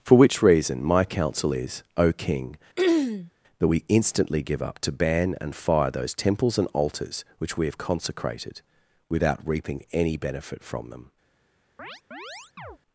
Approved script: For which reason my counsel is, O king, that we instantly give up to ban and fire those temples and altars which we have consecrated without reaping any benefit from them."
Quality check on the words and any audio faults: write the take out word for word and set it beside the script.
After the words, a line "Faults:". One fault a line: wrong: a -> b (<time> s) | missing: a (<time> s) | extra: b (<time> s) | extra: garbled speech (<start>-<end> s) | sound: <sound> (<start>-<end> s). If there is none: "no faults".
For which reason my counsel is, O king, that we instantly give up to ban and fire those temples and altars which we have consecrated without reaping any benefit from them."
Faults:
sound: throat clearing (2.8-3.3 s)
sound: chirp (11.8-12.8 s)